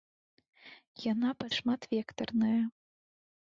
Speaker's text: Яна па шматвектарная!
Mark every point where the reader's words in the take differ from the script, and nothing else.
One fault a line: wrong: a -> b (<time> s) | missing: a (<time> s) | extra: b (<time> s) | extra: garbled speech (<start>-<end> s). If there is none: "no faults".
no faults